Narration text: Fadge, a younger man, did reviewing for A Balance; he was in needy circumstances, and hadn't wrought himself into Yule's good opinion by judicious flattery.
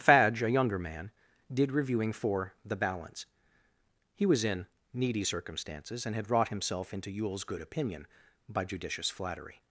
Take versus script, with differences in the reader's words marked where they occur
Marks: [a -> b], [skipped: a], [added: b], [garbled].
Fadge, a younger man, did reviewing for [A -> The] Balance; he was in needy circumstances, and [hadn't -> had] wrought himself into Yule's good opinion by judicious flattery.